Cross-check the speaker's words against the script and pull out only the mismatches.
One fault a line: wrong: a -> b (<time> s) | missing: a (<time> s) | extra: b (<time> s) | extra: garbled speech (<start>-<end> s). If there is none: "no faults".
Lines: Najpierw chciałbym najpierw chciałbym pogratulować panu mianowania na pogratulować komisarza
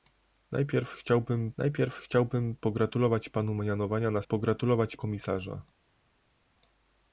no faults